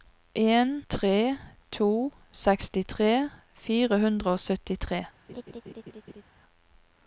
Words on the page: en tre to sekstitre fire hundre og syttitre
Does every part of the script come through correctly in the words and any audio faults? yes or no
no